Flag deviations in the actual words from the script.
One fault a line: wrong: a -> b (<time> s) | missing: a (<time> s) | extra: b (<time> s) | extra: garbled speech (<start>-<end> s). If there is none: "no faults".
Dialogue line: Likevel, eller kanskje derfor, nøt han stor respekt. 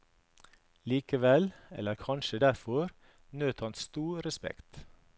no faults